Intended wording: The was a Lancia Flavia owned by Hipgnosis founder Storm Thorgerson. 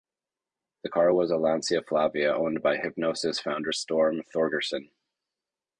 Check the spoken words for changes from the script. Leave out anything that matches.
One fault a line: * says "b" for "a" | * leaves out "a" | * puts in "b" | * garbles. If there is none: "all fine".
* puts in "car"